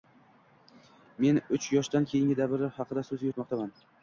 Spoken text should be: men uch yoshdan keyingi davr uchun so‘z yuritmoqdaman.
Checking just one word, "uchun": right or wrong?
wrong